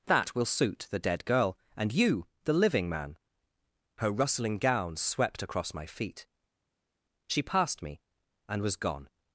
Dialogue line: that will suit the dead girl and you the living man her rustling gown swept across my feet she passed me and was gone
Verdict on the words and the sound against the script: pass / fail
pass